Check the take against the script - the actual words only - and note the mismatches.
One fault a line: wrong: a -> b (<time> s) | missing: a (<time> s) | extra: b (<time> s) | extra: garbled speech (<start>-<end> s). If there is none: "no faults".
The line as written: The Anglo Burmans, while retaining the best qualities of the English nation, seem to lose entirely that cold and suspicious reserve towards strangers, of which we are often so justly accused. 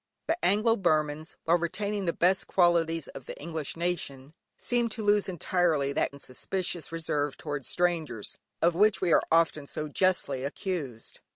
missing: cold (6.2 s)